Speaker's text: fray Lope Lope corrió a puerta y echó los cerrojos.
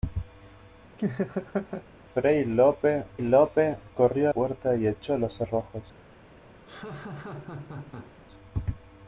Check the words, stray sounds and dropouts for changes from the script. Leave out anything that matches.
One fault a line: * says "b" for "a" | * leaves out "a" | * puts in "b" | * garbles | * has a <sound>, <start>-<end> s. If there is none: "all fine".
* has a laugh, 1.0-1.9 s
* has a laugh, 6.7-8.1 s